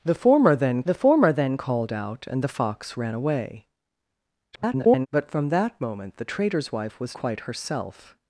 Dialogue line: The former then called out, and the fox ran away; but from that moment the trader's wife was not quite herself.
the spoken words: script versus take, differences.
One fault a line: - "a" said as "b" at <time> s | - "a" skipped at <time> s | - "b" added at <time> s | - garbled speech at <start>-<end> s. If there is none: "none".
- "the former then" added at 0.8 s
- garbled speech at 4.5-5.1 s
- "not" skipped at 7.2 s